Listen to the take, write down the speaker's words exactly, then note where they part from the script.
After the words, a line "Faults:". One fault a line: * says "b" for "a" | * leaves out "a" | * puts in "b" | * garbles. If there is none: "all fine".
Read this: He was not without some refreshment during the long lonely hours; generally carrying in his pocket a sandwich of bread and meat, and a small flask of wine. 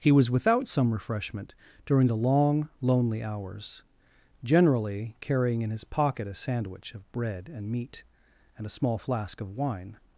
He was without some refreshment during the long lonely hours; generally carrying in his pocket a sandwich of bread and meat, and a small flask of wine.
Faults:
* leaves out "not"